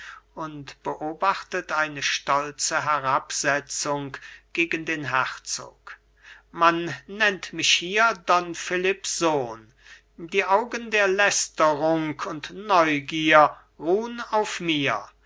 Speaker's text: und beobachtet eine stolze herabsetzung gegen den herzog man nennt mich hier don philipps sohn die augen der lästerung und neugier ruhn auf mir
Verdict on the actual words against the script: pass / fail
pass